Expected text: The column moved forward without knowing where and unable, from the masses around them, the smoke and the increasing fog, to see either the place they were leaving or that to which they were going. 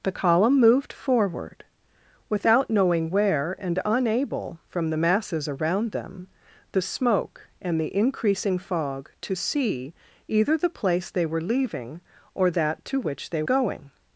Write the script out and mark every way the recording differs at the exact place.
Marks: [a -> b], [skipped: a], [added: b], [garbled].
The column moved forward without knowing where and unable, from the masses around them, the smoke and the increasing fog, to see either the place they were leaving or that to which they [skipped: were] going.